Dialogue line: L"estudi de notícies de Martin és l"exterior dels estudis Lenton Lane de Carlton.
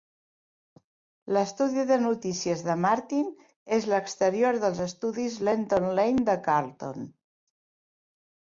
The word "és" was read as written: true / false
true